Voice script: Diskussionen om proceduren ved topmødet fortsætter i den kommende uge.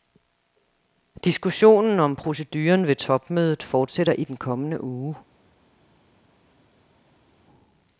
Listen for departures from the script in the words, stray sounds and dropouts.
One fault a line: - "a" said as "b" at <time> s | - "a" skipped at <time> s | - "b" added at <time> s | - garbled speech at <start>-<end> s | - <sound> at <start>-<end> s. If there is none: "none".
none